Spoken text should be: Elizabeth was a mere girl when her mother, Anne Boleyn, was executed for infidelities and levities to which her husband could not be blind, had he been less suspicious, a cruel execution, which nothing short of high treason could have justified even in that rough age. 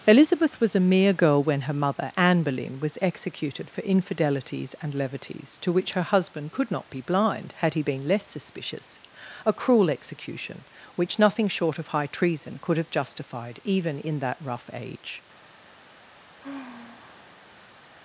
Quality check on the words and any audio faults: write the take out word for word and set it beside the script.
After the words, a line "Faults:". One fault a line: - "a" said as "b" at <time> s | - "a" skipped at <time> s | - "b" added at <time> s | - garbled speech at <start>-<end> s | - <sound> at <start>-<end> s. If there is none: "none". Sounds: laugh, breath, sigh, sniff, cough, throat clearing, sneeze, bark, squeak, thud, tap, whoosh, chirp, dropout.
Elizabeth was a mere girl when her mother, Anne Boleyn, was executed for infidelities and levities to which her husband could not be blind, had he been less suspicious, a cruel execution, which nothing short of high treason could have justified even in that rough age.
Faults:
- sigh at 16.4-17.9 s